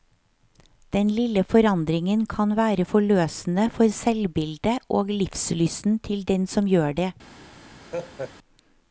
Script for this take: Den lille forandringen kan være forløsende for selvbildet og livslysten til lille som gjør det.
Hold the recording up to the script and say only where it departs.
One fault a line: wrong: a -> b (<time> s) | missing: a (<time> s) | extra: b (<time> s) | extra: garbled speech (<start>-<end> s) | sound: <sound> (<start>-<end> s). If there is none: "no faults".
wrong: lille -> den (6.3 s)
sound: laugh (7.8-8.3 s)